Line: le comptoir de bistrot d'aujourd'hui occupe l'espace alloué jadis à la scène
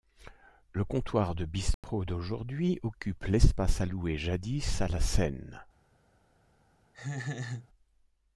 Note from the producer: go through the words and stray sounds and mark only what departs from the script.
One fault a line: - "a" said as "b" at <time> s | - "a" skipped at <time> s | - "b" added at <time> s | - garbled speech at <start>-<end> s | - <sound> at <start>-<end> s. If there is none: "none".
- dropout at 1.7-1.8 s
- laugh at 6.9-7.7 s